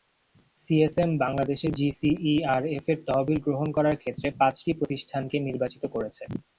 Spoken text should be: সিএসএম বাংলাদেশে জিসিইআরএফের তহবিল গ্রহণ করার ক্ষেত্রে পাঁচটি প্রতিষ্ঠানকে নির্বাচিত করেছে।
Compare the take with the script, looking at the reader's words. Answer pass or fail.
pass